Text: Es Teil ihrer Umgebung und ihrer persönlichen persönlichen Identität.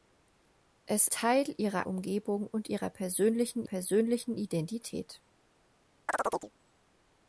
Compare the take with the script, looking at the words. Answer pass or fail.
pass